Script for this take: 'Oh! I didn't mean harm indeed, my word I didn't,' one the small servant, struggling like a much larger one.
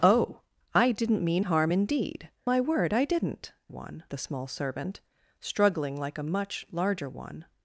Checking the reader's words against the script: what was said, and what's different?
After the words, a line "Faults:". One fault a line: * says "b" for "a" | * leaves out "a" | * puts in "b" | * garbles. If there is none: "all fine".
'Oh! I didn't mean harm indeed, my word I didn't,' one the small servant, struggling like a much larger one.
Faults:
all fine